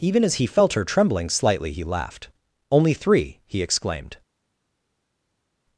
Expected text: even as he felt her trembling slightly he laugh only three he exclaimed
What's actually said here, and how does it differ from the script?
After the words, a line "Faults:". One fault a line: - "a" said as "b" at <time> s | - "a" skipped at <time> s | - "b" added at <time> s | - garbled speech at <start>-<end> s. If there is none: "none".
even as he felt her trembling slightly he laughed only three he exclaimed
Faults:
- "laugh" said as "laughed" at 1.8 s